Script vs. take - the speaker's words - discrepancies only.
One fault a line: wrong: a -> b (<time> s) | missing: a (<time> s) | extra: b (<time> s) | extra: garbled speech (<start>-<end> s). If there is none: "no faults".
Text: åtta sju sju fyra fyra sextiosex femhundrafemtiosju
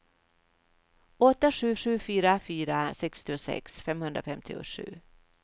no faults